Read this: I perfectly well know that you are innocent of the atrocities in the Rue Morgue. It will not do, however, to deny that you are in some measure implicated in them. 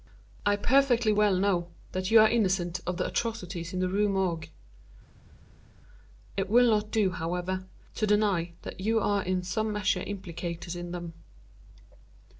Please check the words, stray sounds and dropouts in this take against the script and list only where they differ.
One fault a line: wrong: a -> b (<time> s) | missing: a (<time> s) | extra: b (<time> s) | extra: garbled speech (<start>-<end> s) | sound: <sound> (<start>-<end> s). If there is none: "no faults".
no faults